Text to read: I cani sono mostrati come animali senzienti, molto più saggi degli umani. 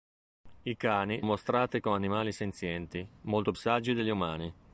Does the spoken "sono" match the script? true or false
false